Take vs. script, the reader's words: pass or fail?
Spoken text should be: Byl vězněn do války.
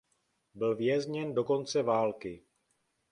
fail